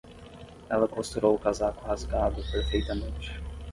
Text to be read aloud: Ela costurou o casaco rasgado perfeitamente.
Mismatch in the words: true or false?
false